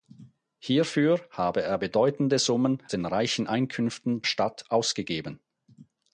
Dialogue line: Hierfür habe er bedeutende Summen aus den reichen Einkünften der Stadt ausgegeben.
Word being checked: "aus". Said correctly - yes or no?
no